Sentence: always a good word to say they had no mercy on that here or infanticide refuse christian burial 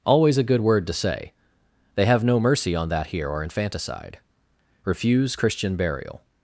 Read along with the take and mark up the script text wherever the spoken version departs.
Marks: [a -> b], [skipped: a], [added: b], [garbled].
always a good word to say they [had -> have] no mercy on that here or infanticide refuse christian burial